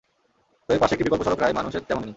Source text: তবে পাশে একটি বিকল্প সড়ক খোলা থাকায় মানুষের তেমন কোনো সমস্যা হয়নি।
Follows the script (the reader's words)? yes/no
no